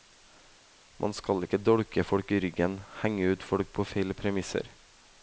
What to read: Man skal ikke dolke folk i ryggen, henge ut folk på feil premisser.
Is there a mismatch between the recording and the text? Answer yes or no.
no